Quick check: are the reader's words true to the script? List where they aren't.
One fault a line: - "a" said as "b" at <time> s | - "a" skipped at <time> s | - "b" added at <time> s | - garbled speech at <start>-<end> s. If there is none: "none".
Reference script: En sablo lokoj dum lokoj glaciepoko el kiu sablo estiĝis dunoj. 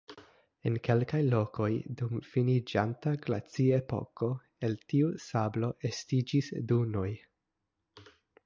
- "sablo" said as "kelkaj" at 0.8 s
- "lokoj" said as "finiĝanta" at 2.3 s
- "kiu" said as "tiu" at 4.9 s